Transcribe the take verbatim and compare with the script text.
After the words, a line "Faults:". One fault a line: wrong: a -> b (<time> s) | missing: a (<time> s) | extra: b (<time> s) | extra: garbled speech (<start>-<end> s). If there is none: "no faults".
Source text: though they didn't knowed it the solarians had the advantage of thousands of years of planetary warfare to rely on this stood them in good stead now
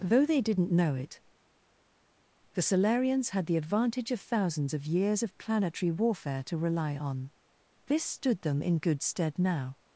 though they didn't know it the solarians had the advantage of thousands of years of planetary warfare to rely on this stood them in good stead now
Faults:
wrong: knowed -> know (0.7 s)